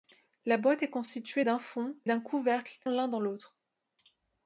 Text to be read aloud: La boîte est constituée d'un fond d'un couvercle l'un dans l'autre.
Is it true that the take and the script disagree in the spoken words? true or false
false